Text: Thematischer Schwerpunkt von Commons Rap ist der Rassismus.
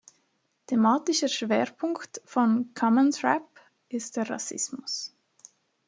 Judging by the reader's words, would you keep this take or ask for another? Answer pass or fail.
pass